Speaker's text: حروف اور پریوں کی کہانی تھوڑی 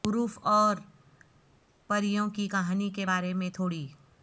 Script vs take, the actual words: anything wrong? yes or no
yes